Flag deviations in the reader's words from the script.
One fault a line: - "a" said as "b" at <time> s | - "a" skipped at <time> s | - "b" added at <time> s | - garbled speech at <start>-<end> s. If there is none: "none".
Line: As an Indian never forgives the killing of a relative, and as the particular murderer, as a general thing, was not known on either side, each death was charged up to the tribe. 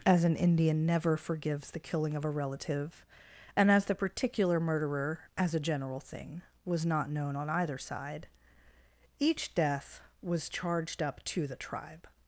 none